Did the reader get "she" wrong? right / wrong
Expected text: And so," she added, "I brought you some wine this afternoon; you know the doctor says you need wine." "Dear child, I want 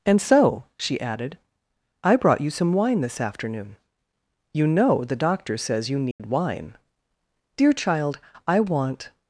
right